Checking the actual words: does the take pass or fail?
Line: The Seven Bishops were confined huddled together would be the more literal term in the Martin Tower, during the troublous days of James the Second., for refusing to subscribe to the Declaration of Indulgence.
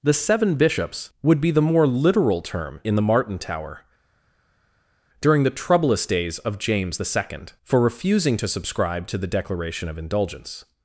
fail